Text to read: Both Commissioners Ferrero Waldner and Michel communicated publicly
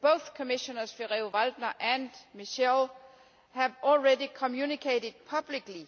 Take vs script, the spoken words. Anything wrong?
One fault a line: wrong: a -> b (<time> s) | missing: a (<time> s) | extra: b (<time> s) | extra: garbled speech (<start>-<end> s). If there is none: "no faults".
extra: have already (3.5 s)